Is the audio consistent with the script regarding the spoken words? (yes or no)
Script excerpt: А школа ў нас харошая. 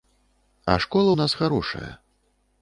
yes